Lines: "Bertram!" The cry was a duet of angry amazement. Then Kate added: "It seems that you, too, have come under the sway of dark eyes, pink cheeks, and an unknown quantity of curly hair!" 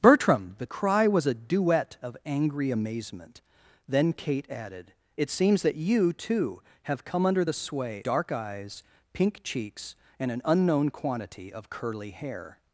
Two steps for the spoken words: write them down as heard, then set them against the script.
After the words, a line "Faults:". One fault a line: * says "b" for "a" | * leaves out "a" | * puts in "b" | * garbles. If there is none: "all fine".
"Bertram!" The cry was a duet of angry amazement. Then Kate added: "It seems that you, too, have come under the sway dark eyes, pink cheeks, and an unknown quantity of curly hair!"
Faults:
* leaves out "of"